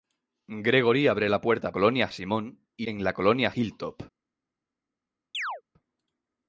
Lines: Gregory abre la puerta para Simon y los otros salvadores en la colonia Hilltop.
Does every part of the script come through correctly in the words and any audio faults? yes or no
no